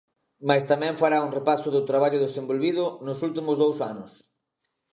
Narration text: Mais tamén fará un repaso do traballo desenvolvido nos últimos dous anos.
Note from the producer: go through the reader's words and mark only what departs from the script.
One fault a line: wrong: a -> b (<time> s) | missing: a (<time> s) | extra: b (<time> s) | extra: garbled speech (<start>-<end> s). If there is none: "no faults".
no faults